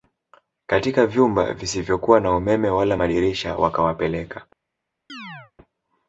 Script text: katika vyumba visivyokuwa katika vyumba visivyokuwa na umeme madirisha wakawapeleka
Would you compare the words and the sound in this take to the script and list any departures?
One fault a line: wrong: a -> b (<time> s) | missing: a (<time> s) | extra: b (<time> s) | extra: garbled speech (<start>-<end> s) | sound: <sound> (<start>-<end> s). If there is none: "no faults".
missing: katika vyumba visivyokuwa (2.2 s)
extra: wala (2.7 s)
sound: chirp (5.1-5.5 s)